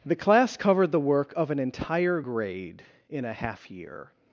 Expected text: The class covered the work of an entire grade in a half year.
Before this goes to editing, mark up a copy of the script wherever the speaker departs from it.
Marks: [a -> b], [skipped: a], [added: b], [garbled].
The class covered the work of an entire grade in a half year.